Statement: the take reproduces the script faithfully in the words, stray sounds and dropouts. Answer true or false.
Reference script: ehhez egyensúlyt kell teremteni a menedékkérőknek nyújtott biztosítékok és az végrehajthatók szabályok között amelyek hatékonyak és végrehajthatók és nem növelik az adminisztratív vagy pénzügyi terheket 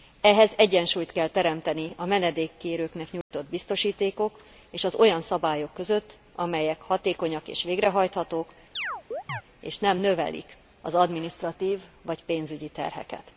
false